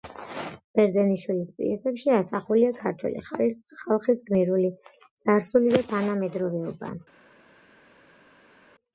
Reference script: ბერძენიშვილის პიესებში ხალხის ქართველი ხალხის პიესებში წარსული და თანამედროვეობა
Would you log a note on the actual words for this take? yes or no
yes